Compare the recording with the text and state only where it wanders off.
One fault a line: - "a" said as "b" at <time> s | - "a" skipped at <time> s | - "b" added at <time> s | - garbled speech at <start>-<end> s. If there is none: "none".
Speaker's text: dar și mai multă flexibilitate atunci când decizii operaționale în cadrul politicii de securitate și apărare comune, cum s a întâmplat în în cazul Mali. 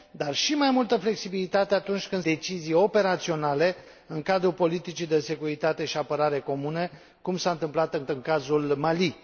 none